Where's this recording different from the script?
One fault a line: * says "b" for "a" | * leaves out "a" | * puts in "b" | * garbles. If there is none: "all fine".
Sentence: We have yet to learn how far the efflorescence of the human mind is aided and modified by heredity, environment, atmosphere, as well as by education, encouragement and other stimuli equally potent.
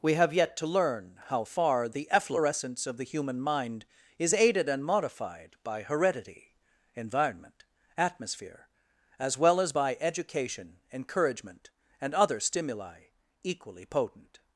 all fine